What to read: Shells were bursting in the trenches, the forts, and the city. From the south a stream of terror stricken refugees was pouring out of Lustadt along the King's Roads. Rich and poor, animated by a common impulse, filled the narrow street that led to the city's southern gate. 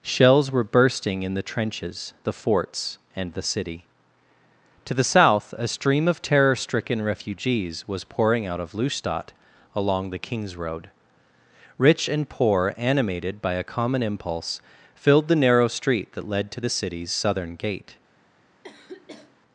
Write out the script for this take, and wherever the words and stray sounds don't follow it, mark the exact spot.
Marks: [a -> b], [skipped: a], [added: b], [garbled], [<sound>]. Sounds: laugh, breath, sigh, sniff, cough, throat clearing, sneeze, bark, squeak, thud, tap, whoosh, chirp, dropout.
Shells were bursting in the trenches, the forts, and the city. [From -> To] the south a stream of terror stricken refugees was pouring out of Lustadt along the King's [Roads. -> Road] Rich and poor, animated by a common impulse, filled the narrow street that led to the city's southern gate. [sniff]